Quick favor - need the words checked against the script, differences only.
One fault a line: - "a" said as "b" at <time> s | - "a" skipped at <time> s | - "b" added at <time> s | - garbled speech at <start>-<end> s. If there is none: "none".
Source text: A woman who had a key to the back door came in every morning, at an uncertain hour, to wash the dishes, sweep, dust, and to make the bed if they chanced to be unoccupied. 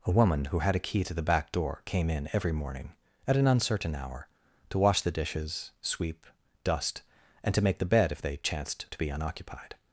none